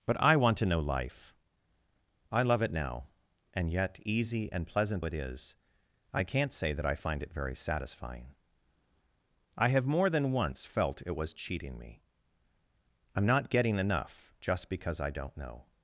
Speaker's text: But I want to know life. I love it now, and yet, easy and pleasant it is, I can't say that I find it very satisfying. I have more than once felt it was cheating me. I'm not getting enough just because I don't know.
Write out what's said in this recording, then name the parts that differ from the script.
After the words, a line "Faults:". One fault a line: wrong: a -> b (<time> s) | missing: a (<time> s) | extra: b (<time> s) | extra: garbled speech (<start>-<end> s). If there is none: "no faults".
But I want to know life. I love it now, and yet, easy and pleasant it is, I can't say that I find it very satisfying. I have more than once felt it was cheating me. I'm not getting enough just because I don't know.
Faults:
no faults